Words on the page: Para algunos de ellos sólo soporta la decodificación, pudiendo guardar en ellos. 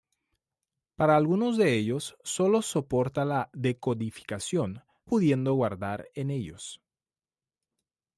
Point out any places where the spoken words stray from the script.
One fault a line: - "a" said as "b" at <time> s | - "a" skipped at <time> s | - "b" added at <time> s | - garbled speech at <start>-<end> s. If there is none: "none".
none